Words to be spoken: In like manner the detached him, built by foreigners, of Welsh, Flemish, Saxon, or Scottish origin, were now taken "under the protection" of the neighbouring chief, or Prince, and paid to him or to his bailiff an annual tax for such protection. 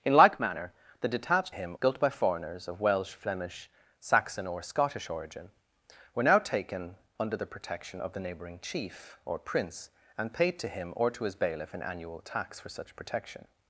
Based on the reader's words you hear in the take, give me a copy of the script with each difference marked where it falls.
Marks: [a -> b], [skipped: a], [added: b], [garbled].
In like manner the detached him, built by foreigners, of Welsh, Flemish, Saxon, or Scottish origin, were now taken "under the protection" of the neighbouring chief, or Prince, and paid to him or to his bailiff an annual tax for such protection.